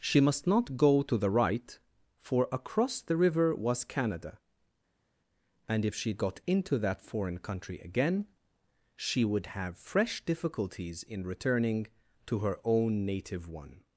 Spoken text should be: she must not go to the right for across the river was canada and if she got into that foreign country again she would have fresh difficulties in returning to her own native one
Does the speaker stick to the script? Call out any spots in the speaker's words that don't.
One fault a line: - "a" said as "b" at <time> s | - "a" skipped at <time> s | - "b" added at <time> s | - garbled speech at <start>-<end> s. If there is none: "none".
none